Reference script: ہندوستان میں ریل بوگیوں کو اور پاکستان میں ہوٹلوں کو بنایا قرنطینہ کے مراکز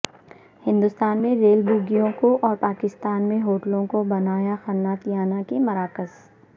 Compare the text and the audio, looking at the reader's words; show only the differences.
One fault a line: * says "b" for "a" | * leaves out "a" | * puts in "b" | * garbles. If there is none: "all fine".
all fine